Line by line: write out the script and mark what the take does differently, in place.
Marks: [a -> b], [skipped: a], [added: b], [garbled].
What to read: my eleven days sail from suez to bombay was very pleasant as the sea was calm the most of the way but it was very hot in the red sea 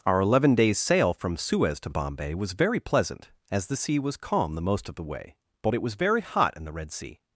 [my -> our] eleven days sail from suez to bombay was very pleasant as the sea was calm the most of the way but it was very hot in the red sea